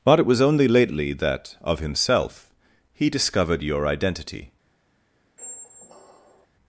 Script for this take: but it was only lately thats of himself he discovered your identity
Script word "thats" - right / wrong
wrong